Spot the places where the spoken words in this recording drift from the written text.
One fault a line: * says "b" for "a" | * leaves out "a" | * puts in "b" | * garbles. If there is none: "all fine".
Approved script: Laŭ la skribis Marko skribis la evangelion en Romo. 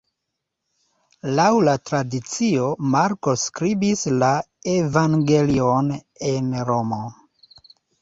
* says "tradicio" for "skribis"